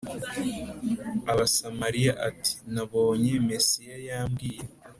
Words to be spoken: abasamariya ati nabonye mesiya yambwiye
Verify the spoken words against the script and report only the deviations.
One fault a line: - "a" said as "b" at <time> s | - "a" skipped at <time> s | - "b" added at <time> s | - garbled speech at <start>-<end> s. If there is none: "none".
none